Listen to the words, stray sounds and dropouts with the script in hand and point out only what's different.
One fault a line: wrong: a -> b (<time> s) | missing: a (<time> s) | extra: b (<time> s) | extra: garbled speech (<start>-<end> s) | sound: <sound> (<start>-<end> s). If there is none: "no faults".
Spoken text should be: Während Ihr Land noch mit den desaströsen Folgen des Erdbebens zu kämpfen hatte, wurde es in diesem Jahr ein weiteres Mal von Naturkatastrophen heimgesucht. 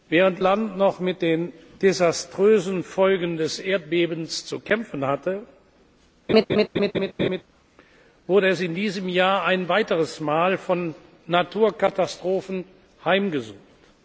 missing: Ihr (0.4 s)
sound: laugh (6.3-7.4 s)